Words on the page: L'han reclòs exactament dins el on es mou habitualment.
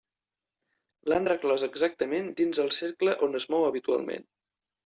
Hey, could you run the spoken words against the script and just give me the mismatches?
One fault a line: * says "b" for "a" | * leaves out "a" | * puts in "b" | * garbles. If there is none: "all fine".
* puts in "cercle"